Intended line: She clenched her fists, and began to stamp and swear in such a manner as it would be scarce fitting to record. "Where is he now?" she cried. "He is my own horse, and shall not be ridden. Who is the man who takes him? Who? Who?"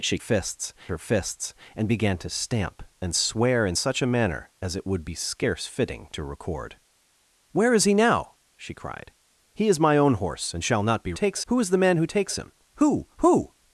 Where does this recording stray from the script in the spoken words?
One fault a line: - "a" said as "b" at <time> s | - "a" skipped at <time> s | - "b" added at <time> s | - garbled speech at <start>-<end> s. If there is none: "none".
- "clenched" said as "fists" at 0.2 s
- "ridden" said as "takes" at 11.1 s